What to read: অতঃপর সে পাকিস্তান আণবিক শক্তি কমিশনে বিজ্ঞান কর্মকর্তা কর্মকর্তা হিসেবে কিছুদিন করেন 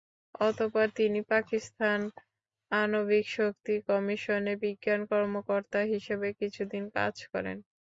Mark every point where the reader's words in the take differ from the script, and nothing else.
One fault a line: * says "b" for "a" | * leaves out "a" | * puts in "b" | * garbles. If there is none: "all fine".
* says "তিনি" for "সে"
* leaves out "কর্মকর্তা"
* puts in "কাজ"